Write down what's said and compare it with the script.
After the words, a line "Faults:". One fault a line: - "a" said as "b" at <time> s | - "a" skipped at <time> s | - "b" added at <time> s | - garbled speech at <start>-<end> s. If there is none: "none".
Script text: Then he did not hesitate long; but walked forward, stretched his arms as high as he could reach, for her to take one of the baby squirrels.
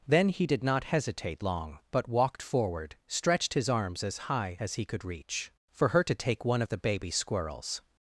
Then he did not hesitate long; but walked forward, stretched his arms as high as he could reach, for her to take one of the baby squirrels.
Faults:
none